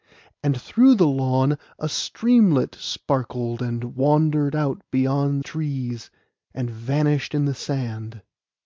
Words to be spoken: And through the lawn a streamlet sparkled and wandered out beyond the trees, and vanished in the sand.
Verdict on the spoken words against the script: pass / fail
fail